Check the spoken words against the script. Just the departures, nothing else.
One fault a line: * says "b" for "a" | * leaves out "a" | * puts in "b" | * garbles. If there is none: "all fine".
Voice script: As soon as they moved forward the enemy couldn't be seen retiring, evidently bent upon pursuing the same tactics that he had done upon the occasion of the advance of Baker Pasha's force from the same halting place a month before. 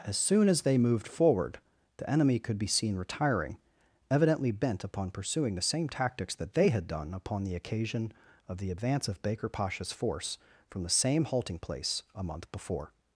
* says "could" for "couldn't"
* says "they" for "he"